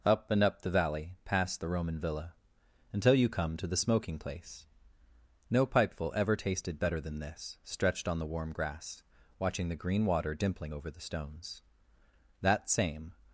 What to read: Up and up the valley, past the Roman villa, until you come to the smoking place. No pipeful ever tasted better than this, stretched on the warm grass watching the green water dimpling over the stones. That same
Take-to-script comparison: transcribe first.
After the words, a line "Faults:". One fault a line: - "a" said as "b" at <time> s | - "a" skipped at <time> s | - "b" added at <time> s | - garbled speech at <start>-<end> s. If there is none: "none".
Up and up the valley, past the Roman villa, until you come to the smoking place. No pipeful ever tasted better than this, stretched on the warm grass watching the green water dimpling over the stones. That same
Faults:
none